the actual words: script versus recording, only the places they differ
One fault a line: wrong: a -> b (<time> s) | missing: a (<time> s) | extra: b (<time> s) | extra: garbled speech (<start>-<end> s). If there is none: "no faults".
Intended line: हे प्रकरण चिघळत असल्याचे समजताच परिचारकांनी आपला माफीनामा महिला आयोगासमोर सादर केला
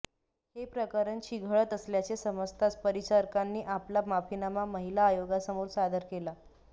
no faults